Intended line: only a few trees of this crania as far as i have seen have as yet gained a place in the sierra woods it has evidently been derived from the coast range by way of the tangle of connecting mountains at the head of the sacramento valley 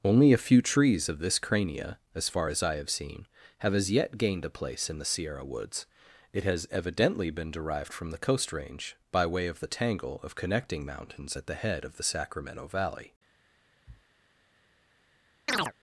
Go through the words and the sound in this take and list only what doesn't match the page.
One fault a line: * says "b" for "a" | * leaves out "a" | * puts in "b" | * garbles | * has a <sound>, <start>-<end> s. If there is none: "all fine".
* has a sniff, 13.9-14.0 s
* has a chirp, 15.5-15.7 s